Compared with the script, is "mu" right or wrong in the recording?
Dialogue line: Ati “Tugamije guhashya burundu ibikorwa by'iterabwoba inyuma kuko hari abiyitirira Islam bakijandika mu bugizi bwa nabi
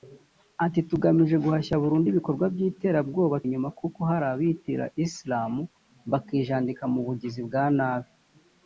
right